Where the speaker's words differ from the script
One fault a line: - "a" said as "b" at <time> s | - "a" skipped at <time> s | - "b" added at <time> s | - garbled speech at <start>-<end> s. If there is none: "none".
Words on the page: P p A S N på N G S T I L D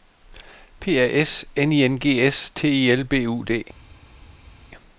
- "p" skipped at 1.0 s
- "på" said as "I" at 1.7 s
- "B U" added at 3.0 s